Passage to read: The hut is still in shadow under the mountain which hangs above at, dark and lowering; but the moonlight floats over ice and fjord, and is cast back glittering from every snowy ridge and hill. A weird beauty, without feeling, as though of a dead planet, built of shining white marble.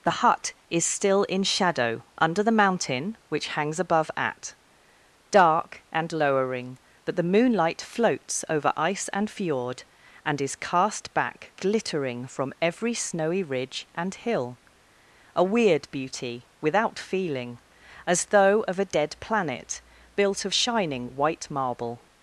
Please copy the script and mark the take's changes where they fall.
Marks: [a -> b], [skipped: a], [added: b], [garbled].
The hut is still in shadow under the mountain which hangs above at, dark and lowering; but the moonlight floats over ice and fjord, and is cast back glittering from every snowy ridge and hill. A weird beauty, without feeling, as though of a dead planet, built of shining white marble.